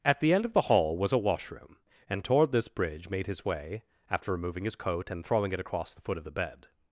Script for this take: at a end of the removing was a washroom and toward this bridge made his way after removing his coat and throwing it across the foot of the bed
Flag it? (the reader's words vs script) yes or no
yes